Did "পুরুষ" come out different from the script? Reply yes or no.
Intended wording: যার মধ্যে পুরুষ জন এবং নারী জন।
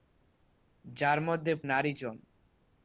yes